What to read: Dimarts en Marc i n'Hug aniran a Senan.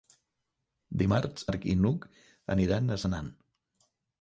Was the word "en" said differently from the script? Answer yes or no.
yes